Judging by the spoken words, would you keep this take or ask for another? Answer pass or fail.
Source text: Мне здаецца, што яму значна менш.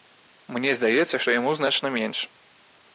pass